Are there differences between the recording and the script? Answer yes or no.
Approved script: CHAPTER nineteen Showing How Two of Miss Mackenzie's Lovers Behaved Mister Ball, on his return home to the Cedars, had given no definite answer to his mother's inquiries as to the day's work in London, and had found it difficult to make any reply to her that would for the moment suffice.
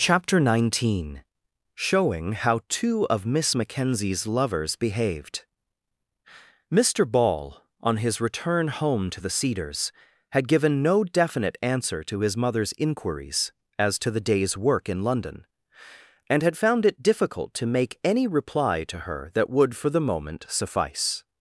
no